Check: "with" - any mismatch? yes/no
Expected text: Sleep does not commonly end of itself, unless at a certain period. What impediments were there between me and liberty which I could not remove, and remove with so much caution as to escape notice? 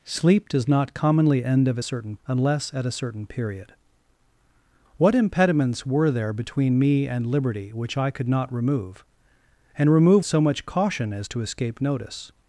yes